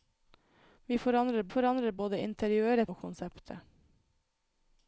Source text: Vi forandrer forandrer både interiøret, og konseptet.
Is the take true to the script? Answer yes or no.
yes